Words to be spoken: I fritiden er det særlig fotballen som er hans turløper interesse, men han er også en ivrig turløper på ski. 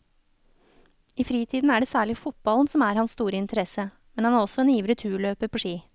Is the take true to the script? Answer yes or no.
no